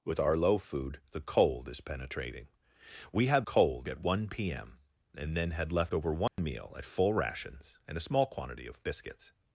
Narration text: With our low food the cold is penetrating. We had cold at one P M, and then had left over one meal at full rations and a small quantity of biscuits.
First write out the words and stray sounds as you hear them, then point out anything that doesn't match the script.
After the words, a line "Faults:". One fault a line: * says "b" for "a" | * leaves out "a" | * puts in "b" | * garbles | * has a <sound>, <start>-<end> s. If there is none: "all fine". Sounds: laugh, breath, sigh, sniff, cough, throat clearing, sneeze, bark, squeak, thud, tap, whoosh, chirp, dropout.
With our low food the cold is penetrating. We had cold at one P M, and then had left over one meal at full rations and a small quantity of biscuits.
Faults:
* has a dropout, 6.3-6.4 s